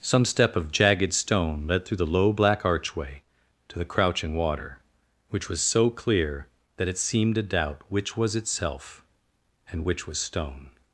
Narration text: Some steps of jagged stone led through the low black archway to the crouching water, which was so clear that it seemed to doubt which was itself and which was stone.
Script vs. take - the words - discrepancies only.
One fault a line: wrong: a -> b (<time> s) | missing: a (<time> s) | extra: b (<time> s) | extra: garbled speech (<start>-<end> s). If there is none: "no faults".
wrong: steps -> step (0.2 s)